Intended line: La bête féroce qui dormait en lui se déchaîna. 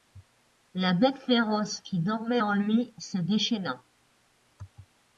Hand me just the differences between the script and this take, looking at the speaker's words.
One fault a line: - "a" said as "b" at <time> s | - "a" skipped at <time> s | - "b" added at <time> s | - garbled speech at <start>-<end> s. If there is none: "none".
none